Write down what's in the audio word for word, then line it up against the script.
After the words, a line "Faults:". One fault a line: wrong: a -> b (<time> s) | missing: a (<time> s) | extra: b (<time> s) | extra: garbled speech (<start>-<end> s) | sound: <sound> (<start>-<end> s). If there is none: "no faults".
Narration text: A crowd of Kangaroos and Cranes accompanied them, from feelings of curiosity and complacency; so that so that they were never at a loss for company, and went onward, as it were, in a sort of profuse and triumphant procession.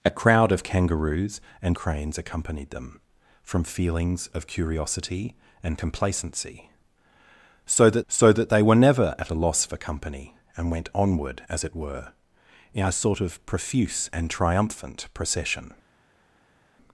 A crowd of Kangaroos and Cranes accompanied them, from feelings of curiosity and complacency; so that so that they were never at a loss for company, and went onward, as it were, in a sort of profuse and triumphant procession.
Faults:
no faults